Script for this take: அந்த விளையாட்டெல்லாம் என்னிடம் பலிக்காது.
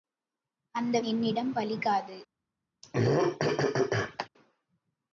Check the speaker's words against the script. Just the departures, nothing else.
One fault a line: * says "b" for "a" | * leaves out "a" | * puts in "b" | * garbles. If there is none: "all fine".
* leaves out "விளையாட்டெல்லாம்"